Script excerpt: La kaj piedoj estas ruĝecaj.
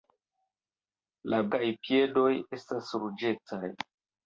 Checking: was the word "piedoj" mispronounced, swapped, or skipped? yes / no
no